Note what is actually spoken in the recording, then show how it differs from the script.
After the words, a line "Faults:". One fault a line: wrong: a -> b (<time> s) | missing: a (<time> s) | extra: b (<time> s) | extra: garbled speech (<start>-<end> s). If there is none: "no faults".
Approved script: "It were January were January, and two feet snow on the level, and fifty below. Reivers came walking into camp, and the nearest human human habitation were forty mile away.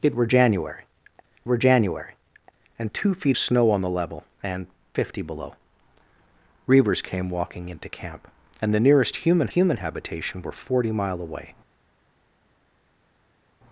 "It were January were January, and two feet snow on the level, and fifty below. Reivers came walking into camp, and the nearest human human habitation were forty mile away.
Faults:
no faults